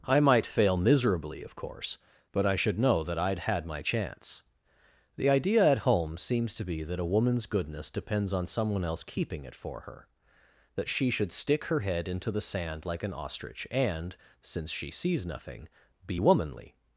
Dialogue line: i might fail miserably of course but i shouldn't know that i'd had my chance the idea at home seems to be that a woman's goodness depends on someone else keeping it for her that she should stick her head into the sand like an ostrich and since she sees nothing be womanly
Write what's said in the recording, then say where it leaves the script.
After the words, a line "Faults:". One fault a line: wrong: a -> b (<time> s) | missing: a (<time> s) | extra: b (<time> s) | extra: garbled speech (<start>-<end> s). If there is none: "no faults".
i might fail miserably of course but i should know that i'd had my chance the idea at home seems to be that a woman's goodness depends on someone else keeping it for her that she should stick her head into the sand like an ostrich and since she sees nothing be womanly
Faults:
wrong: shouldn't -> should (2.5 s)